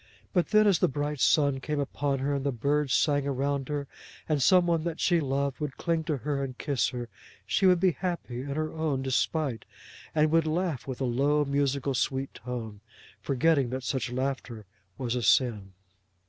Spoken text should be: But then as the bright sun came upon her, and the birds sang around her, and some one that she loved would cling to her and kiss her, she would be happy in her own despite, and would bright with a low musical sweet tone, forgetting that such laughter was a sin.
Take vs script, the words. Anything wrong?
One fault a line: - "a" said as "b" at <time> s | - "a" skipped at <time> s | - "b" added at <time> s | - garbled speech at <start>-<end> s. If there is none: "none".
- "bright" said as "laugh" at 10.5 s